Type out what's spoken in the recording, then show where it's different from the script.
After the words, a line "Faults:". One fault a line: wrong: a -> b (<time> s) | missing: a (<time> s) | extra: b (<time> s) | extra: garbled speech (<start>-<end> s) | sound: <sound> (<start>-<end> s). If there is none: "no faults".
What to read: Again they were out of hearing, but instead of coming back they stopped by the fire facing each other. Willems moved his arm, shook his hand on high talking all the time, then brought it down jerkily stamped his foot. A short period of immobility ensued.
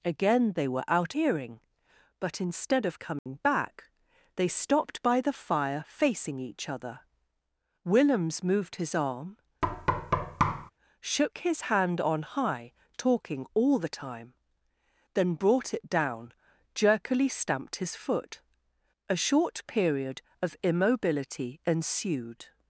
Again they were out hearing, but instead of coming back they stopped by the fire facing each other. Willems moved his arm, shook his hand on high talking all the time, then brought it down jerkily stamped his foot. A short period of immobility ensued.
Faults:
missing: of (1.1 s)
sound: dropout (3.2-3.3 s)
sound: thud (9.6-10.7 s)